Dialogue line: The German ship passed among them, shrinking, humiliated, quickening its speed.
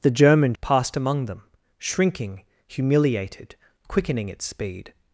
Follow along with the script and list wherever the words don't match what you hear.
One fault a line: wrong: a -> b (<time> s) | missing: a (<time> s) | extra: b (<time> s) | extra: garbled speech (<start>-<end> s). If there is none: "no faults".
missing: ship (0.6 s)